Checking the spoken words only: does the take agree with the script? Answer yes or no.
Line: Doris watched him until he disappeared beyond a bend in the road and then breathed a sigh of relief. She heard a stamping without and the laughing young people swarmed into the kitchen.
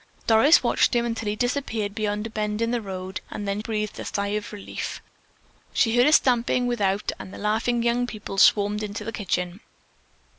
yes